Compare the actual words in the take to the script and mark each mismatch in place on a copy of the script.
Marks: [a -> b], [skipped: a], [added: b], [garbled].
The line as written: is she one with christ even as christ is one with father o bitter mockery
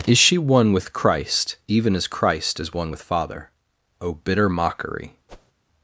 is she one with christ even as christ is one with father o bitter mockery